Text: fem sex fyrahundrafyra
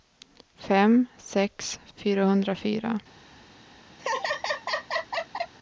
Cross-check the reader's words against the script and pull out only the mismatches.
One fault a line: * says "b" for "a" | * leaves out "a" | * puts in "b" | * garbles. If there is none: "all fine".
all fine